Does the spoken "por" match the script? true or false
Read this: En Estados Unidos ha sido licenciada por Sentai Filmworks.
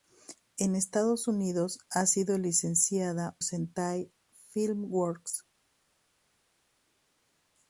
false